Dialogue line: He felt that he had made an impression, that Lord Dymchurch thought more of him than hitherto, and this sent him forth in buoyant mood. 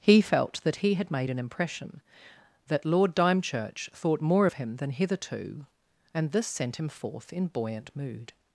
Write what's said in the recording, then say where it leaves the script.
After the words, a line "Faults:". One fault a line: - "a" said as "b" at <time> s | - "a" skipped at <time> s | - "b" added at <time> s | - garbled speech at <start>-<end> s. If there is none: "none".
He felt that he had made an impression, that Lord Dymchurch thought more of him than hitherto, and this sent him forth in buoyant mood.
Faults:
none